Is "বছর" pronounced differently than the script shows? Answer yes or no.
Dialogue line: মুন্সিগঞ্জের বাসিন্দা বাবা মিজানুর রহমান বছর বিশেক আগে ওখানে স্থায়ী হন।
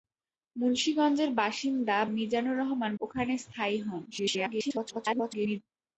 yes